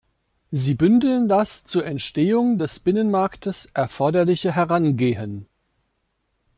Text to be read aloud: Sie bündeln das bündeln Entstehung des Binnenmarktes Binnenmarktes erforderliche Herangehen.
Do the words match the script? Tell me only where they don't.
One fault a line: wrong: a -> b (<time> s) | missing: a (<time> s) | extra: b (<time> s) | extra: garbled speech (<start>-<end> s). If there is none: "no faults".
wrong: bündeln -> zur (1.7 s)
missing: Binnenmarktes (3.7 s)